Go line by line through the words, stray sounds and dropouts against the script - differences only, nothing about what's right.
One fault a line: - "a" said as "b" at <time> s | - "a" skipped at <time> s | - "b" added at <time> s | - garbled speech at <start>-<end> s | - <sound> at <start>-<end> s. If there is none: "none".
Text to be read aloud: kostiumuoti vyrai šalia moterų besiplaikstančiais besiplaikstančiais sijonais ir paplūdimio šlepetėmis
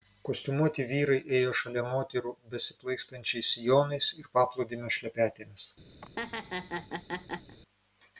- "ėjo" added at 1.4 s
- "besiplaikstančiais" skipped at 3.5 s
- laugh at 6.0-7.6 s